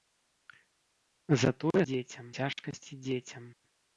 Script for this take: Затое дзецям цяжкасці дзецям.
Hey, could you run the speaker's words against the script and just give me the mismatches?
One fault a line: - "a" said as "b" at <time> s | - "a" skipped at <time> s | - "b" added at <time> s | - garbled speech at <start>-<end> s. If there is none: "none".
none